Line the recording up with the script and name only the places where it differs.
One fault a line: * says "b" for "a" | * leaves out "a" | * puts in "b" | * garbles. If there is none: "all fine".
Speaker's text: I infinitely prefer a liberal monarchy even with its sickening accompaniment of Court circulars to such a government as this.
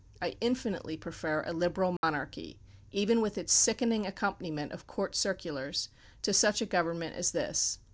all fine